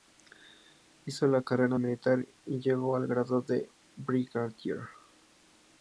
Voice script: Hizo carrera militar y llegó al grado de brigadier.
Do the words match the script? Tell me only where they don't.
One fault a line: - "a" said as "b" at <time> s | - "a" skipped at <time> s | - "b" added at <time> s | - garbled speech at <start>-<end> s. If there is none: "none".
- "la" added at 1.3 s